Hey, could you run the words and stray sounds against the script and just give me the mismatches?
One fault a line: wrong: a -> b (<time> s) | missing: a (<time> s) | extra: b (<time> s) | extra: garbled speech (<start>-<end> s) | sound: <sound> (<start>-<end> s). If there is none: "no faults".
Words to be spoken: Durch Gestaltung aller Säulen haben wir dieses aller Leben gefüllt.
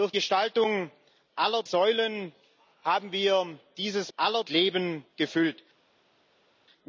no faults